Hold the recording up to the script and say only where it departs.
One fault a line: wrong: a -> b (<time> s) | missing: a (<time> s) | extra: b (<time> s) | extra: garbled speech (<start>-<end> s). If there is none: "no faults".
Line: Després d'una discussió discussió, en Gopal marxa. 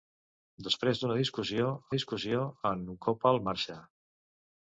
no faults